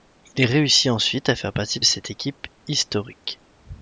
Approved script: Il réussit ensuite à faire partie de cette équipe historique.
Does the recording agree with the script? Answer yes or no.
no